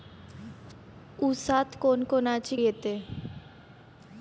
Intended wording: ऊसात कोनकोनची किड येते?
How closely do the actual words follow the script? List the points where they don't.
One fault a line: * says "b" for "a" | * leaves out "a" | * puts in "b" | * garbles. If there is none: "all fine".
* leaves out "किड"